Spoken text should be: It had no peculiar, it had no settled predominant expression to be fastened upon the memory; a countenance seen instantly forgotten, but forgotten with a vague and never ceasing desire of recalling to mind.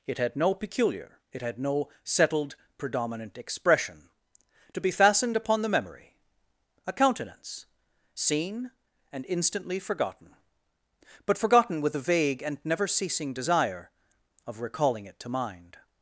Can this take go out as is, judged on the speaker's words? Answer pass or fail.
fail